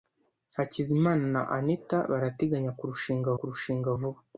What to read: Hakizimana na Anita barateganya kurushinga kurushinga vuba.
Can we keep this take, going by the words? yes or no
yes